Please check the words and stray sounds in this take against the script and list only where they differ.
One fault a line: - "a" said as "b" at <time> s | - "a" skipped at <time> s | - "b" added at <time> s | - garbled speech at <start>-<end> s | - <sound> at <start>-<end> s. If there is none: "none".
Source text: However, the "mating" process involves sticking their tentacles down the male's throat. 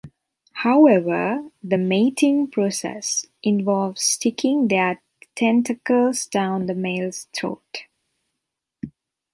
none